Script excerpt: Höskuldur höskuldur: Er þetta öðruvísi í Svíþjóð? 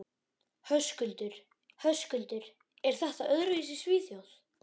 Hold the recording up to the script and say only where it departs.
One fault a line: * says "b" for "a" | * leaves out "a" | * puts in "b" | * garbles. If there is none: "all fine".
all fine